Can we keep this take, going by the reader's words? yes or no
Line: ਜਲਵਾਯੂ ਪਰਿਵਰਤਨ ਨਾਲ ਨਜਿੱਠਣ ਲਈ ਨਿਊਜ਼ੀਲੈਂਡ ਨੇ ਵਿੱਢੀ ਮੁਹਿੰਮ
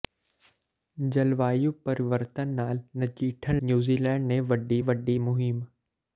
no